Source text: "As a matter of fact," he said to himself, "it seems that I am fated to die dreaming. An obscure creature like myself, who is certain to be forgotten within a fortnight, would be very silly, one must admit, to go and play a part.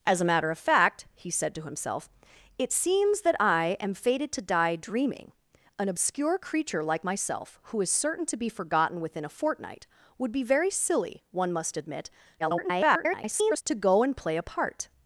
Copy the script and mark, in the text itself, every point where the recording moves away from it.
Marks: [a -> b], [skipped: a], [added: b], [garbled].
"As a matter of fact," he said to himself, "it seems that I am fated to die dreaming. An obscure creature like myself, who is certain to be forgotten within a fortnight, would be very silly, one must admit, [garbled] to go and play a part.